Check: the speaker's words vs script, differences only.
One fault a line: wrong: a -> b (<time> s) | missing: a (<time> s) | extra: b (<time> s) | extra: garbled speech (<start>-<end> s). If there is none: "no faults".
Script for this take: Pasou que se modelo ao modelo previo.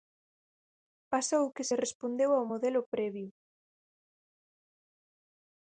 wrong: modelo -> respondeu (1.8 s)